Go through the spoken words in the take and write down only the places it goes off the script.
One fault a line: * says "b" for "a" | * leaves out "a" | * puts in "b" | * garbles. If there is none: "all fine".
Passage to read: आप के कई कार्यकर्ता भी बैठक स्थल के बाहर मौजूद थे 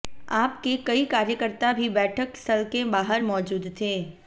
all fine